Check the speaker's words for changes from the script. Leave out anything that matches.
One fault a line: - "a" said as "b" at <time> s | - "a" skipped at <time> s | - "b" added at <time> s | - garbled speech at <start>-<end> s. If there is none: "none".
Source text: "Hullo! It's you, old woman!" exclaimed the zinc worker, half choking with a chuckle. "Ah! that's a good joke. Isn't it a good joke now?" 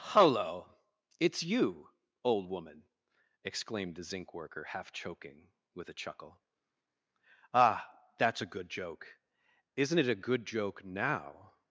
none